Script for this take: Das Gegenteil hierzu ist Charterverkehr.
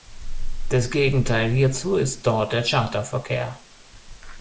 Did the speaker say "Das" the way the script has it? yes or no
yes